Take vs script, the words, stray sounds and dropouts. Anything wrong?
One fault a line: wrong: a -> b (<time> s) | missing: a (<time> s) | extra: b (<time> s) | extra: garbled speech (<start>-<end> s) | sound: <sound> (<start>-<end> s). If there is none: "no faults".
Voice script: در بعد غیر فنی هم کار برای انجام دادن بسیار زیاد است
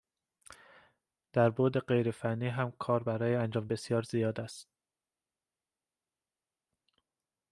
missing: دادن (3.7 s)